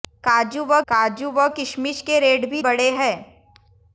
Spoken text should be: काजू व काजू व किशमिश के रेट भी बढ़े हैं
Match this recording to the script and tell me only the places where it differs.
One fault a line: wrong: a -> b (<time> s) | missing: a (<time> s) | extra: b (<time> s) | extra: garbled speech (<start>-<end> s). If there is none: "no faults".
no faults